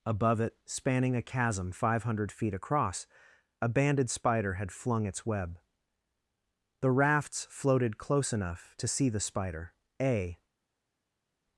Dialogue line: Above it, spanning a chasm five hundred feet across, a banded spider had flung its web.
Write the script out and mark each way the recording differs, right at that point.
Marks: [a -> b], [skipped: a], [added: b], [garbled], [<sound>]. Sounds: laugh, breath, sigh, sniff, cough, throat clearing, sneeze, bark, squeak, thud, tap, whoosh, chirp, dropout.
Above it, spanning a chasm five hundred feet across, a banded spider had flung its web. [added: The rafts floated close enough to see the spider a]